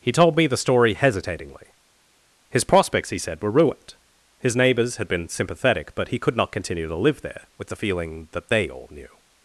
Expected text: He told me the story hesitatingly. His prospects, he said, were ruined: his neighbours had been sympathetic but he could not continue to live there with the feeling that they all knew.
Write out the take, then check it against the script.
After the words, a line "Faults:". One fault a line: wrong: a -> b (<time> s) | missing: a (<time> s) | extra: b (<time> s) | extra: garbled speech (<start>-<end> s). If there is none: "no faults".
He told me the story hesitatingly. His prospects, he said, were ruined: his neighbours had been sympathetic but he could not continue to live there with the feeling that they all knew.
Faults:
no faults